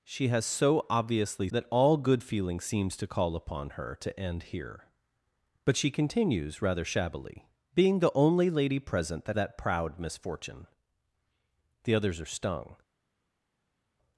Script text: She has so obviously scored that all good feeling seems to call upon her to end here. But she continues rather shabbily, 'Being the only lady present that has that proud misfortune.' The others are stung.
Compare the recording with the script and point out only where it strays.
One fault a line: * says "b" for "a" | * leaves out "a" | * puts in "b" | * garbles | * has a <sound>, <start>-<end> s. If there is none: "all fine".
* leaves out "scored"
* leaves out "has"